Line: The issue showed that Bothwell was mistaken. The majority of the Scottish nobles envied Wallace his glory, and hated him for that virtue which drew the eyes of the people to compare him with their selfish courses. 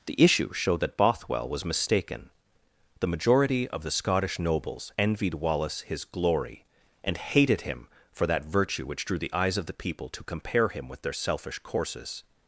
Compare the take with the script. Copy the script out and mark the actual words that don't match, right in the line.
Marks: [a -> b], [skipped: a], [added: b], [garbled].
The issue showed that Bothwell was mistaken. The majority of the Scottish nobles envied Wallace his glory, and hated him for that virtue which drew the eyes of the people to compare him with their selfish courses.